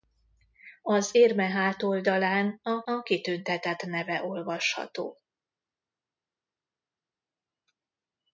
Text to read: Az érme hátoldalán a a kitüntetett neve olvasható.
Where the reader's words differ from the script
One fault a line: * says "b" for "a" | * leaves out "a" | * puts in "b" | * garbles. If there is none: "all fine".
all fine